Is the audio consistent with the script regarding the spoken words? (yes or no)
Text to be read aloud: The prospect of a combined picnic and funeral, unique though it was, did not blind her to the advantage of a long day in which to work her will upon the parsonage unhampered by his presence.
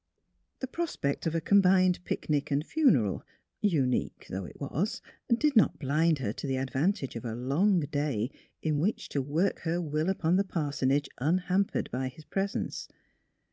yes